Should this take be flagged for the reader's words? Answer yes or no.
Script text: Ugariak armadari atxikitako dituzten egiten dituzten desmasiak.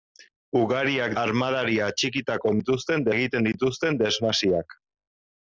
no